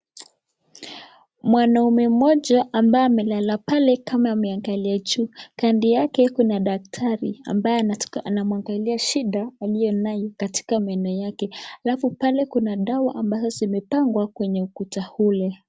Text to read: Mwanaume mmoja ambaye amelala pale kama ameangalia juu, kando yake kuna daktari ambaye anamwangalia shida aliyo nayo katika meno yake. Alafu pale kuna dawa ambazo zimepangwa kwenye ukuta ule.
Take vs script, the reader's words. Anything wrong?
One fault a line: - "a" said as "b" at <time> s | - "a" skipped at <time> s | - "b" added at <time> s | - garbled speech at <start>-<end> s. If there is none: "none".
none